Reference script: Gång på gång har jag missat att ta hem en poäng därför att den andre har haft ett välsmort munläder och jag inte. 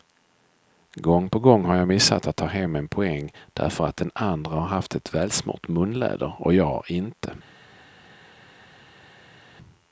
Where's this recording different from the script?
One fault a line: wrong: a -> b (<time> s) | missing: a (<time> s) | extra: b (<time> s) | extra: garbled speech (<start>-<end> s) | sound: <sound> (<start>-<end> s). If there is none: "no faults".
no faults